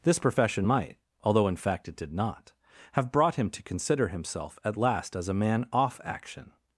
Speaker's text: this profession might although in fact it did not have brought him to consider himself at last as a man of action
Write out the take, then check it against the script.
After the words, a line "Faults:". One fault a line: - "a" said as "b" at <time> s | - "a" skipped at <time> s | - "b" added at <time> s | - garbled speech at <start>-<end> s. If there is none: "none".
this profession might although in fact it did not have brought him to consider himself at last as a man off action
Faults:
- "of" said as "off" at 5.7 s